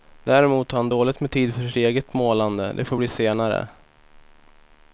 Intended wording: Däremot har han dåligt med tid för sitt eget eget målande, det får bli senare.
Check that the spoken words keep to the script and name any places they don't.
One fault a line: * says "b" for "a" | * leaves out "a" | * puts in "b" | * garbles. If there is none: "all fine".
* leaves out "eget"